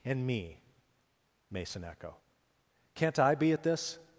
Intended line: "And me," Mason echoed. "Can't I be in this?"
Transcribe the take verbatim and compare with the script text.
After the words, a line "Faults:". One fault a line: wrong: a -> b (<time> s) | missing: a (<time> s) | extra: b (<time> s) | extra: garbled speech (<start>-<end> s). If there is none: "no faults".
"And me," Mason echo. "Can't I be at this?"
Faults:
wrong: echoed -> echo (1.8 s)
wrong: in -> at (3.5 s)